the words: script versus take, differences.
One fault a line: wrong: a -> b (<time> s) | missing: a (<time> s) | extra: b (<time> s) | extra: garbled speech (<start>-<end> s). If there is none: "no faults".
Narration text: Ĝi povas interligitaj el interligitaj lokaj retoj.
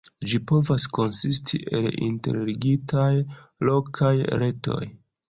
wrong: interligitaj -> konsisti (1.0 s)